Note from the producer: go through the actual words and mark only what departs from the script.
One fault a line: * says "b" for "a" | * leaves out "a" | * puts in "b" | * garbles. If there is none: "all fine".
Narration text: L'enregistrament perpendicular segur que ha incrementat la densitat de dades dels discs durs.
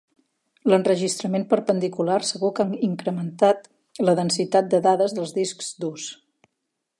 all fine